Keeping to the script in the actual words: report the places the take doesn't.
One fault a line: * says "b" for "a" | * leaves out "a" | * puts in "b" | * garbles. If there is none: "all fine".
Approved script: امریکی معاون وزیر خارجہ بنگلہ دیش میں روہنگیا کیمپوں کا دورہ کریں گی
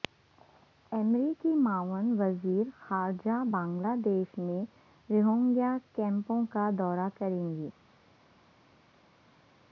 all fine